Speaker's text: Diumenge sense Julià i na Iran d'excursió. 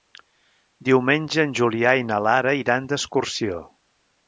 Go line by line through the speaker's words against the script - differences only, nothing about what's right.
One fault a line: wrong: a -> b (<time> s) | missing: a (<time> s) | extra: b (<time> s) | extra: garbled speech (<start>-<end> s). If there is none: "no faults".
wrong: sense -> en (1.4 s)
extra: Lara (2.3 s)